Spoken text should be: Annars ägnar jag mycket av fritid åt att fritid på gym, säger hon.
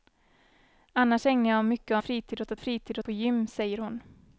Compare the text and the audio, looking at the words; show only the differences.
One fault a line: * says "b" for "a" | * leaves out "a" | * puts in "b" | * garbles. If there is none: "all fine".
all fine